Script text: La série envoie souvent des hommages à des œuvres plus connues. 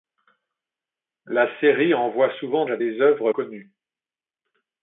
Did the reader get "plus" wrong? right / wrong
wrong